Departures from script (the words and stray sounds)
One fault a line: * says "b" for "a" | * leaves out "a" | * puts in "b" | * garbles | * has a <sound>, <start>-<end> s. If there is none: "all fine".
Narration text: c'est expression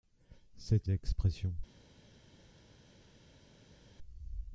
all fine